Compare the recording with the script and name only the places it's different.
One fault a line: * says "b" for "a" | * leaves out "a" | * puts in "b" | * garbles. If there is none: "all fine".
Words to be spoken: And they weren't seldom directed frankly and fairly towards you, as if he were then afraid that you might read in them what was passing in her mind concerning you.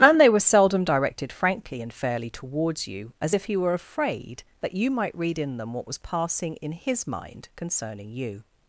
* says "were" for "weren't"
* leaves out "then"
* says "his" for "her"